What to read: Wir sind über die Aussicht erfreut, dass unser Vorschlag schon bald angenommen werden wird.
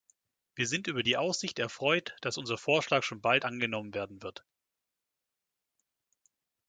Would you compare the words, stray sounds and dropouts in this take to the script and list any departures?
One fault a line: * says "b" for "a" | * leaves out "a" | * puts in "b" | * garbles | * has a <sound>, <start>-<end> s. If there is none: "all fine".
all fine